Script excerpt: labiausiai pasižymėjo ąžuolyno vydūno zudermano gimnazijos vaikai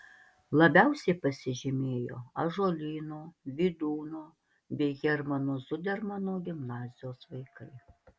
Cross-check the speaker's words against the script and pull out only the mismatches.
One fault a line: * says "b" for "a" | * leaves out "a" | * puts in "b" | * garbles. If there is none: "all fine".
* puts in "bei hermano"